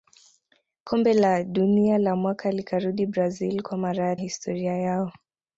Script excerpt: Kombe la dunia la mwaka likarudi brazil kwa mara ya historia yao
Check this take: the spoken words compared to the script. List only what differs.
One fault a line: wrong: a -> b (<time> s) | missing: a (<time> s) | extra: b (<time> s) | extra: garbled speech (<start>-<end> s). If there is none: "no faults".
no faults